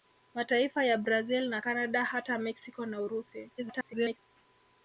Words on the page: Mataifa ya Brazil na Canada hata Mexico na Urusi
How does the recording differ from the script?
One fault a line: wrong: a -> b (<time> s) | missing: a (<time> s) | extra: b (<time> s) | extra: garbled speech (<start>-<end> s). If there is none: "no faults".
extra: garbled speech (3.6-4.2 s)